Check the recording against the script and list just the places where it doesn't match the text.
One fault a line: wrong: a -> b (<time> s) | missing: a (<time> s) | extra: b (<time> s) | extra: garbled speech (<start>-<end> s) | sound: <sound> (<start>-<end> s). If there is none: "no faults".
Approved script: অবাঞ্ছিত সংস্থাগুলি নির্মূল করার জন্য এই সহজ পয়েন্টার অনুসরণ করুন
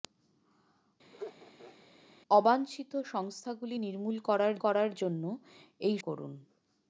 sound: laugh (1.1-1.9 s)
extra: করার (4.6 s)
missing: সহজ পয়েন্টার অনুসরণ (6.0 s)